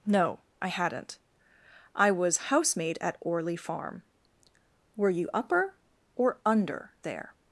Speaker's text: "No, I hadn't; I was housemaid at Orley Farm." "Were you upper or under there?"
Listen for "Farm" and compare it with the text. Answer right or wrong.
right